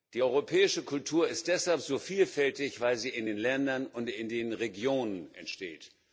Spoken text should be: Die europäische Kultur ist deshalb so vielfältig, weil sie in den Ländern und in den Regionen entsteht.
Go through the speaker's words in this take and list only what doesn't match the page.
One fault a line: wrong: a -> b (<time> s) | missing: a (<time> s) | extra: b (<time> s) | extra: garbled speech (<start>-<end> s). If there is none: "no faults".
no faults